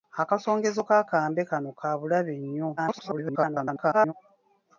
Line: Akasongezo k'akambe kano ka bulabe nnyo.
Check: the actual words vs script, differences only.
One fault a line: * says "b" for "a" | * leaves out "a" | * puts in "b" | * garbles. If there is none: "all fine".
* garbles